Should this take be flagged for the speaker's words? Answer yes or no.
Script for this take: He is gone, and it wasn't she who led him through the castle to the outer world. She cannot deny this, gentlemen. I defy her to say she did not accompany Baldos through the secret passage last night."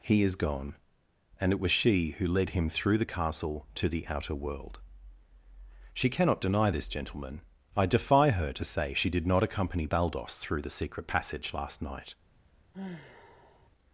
yes